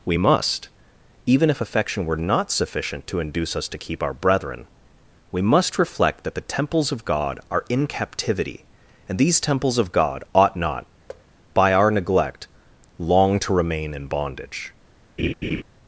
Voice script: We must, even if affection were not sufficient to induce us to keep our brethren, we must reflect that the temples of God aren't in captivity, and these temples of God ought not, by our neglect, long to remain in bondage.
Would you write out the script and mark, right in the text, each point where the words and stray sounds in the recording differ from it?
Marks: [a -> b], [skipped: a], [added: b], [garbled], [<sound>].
We must, even if affection were not sufficient to induce us to keep our brethren, we must reflect that the temples of God [aren't -> are] in captivity, and these temples of God ought not, [thud] by our neglect, long to remain in bondage. [laugh]